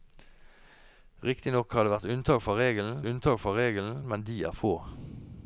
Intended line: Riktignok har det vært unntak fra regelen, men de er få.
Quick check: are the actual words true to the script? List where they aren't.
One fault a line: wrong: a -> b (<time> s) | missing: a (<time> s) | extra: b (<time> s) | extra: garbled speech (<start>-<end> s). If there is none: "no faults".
extra: unntak fra regelen (3.1 s)